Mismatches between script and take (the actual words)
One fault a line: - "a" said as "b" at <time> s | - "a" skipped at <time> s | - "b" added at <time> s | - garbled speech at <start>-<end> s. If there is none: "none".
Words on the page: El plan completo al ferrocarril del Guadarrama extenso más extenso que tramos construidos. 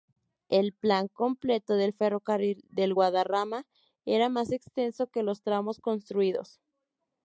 - "al" said as "del" at 1.8 s
- "extenso" said as "era" at 4.0 s
- "los" added at 5.2 s